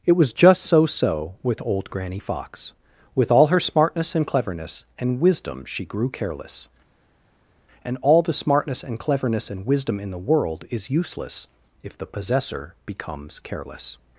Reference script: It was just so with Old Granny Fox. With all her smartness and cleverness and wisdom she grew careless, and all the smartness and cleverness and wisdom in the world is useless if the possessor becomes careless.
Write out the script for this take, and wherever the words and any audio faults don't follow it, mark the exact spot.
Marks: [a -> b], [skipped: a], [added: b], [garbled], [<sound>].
It was just so [added: so] with Old Granny Fox. With all her smartness and cleverness and wisdom she grew careless, and all the smartness and cleverness and wisdom in the world is useless if the possessor becomes careless.